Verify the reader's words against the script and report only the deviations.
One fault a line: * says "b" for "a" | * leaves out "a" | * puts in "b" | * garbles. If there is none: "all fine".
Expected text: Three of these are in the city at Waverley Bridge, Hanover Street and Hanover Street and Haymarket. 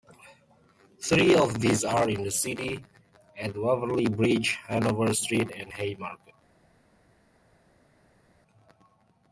* leaves out "Hanover Street and"